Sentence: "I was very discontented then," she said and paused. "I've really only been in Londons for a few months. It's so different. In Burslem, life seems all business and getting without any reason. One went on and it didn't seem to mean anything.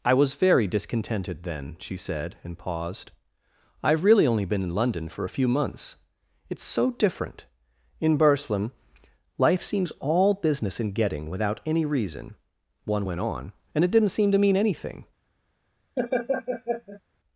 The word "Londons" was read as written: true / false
false